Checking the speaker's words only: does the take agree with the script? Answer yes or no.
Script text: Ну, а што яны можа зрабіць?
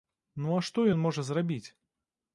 no